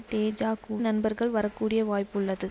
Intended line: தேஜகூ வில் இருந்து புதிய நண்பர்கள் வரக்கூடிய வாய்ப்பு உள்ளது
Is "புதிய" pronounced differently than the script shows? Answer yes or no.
yes